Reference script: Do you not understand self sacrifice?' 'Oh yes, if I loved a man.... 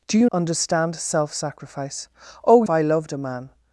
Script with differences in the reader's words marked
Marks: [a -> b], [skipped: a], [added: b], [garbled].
Do you [skipped: not] understand self sacrifice?' 'Oh [skipped: yes, if] I loved a man....